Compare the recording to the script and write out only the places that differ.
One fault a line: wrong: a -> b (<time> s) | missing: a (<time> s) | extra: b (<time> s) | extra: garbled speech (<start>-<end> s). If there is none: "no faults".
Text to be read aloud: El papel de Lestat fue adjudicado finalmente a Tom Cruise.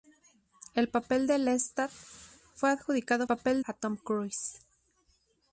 wrong: finalmente -> papel (3.2 s)